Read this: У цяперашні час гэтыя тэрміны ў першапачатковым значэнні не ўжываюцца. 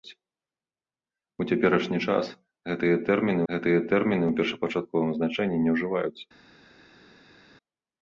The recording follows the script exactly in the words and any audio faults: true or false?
false